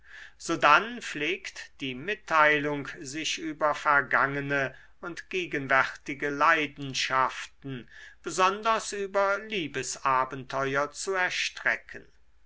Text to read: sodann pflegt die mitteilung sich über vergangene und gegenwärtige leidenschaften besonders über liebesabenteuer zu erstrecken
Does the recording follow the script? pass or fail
pass